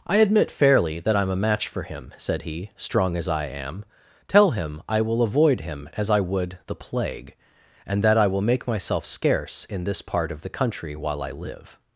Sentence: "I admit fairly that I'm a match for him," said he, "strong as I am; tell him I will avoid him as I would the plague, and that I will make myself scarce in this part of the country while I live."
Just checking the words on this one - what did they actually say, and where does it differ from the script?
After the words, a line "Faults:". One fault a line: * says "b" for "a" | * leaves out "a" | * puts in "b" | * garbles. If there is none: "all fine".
"I admit fairly that I'm a match for him," said he, "strong as I am; tell him I will avoid him as I would the plague, and that I will make myself scarce in this part of the country while I live."
Faults:
all fine